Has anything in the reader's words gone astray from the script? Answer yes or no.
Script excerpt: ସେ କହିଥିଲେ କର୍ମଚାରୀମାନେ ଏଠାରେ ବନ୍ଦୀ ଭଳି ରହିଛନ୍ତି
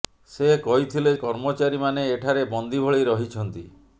no